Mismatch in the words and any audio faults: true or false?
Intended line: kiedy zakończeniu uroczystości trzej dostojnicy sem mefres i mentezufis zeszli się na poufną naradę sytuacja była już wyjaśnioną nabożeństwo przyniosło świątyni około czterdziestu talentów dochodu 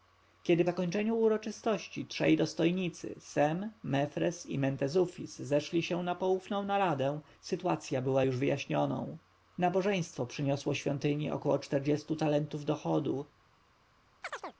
true